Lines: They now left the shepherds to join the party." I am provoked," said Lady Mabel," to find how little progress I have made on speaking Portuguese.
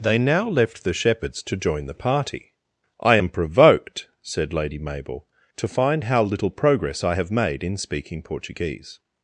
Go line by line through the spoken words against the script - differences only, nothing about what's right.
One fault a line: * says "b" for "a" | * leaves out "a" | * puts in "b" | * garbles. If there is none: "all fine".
* says "in" for "on"